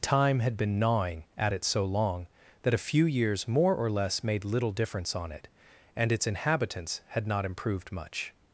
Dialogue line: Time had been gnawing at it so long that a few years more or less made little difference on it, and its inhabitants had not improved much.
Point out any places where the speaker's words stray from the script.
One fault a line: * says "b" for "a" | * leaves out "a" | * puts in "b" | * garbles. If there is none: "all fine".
all fine